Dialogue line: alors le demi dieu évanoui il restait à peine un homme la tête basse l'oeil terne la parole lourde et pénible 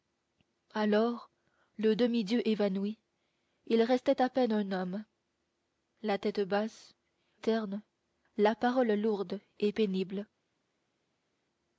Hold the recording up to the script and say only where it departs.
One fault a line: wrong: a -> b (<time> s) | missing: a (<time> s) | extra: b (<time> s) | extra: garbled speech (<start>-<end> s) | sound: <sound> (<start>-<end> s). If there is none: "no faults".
missing: l'oeil (7.0 s)